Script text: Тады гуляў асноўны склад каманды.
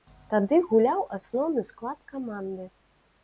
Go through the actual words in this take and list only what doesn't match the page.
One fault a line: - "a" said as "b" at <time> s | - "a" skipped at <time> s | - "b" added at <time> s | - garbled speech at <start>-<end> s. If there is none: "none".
none